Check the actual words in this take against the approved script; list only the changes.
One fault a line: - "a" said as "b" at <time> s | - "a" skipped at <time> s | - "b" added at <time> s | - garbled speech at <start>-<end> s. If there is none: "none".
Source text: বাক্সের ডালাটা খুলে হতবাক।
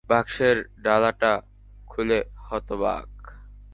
none